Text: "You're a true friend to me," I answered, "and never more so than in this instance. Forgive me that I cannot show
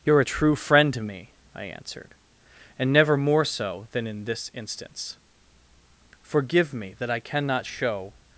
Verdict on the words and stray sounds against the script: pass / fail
pass